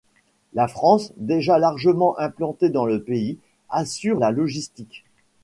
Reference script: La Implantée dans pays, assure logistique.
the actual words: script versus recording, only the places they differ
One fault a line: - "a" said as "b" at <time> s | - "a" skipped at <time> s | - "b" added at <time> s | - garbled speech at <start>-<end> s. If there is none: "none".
- "France déjà largement" added at 0.7 s
- "le" added at 2.9 s
- "la" added at 4.2 s